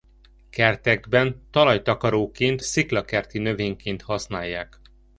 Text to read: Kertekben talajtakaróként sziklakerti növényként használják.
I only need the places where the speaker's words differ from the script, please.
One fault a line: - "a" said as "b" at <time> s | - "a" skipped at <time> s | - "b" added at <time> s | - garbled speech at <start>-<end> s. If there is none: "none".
none